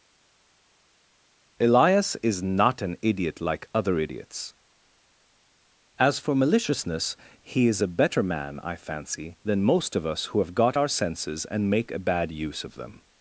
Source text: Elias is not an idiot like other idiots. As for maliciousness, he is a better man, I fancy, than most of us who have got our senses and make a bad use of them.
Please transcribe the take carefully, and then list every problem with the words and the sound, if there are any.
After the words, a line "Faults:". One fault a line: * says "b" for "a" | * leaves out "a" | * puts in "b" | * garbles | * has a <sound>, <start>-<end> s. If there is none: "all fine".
Elias is not an idiot like other idiots. As for maliciousness, he is a better man, I fancy, than most of us who have got our senses and make a bad use of them.
Faults:
all fine